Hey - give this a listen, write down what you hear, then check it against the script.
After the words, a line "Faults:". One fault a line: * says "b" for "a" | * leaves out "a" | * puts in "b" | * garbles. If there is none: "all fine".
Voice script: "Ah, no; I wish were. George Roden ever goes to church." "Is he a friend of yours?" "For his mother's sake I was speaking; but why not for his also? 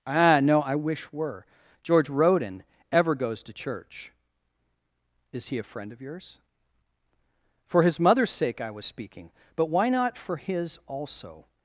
"Ah, no; I wish were. George Roden ever goes to church." "Is he a friend of yours?" "For his mother's sake I was speaking; but why not for his also?
Faults:
all fine